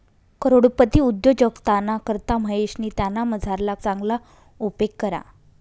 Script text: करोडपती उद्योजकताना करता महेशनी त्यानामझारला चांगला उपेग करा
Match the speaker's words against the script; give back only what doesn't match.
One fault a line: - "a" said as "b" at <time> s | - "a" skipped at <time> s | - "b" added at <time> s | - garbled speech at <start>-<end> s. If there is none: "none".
none